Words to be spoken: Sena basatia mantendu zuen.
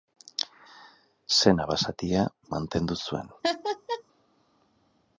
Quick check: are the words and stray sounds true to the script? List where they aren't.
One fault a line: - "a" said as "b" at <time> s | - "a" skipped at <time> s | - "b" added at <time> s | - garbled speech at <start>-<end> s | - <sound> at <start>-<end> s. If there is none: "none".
- laugh at 3.4-4.0 s